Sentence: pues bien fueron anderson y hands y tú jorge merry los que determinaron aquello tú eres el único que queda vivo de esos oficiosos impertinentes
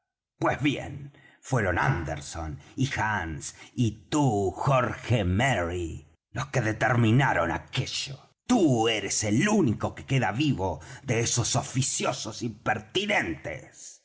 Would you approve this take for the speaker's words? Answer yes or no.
yes